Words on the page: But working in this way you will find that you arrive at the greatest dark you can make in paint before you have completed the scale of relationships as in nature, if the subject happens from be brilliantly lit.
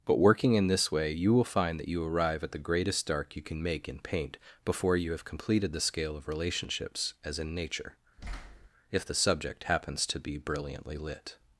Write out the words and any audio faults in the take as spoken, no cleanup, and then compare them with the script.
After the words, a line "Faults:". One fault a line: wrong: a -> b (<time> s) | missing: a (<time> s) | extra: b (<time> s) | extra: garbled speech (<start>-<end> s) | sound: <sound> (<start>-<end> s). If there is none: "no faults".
But working in this way you will find that you arrive at the greatest dark you can make in paint before you have completed the scale of relationships as in nature, if the subject happens to be brilliantly lit.
Faults:
sound: thud (8.2-8.7 s)
wrong: from -> to (10.1 s)